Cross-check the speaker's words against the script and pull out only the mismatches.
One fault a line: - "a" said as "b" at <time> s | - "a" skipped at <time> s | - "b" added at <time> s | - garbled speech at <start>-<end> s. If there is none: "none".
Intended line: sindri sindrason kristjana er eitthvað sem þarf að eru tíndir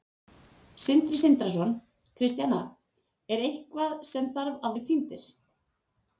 none